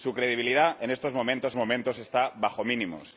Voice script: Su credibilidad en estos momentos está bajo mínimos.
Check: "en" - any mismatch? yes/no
no